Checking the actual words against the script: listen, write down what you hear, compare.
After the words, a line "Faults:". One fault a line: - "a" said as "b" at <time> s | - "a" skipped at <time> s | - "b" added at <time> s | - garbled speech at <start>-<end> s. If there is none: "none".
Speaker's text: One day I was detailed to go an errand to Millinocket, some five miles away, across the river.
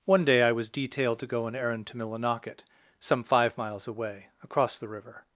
One day I was detailed to go an errand to Millinocket, some five miles away, across the river.
Faults:
none